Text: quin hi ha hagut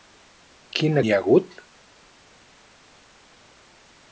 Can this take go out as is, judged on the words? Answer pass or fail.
pass